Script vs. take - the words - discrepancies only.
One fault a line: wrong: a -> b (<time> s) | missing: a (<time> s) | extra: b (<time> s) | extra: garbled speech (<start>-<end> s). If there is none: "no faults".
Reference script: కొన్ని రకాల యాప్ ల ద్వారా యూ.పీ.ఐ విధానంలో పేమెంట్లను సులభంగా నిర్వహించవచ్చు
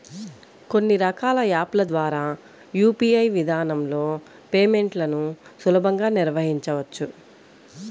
no faults